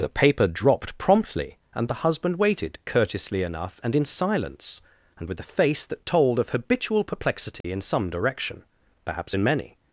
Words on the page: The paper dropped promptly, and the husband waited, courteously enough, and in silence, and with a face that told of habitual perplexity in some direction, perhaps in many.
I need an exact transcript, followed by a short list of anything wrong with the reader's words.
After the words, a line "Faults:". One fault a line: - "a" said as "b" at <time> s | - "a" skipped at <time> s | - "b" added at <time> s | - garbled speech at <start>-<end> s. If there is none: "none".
The paper dropped promptly, and the husband waited, courteously enough, and in silence, and with a face that told of habitual perplexity in some direction, perhaps in many.
Faults:
none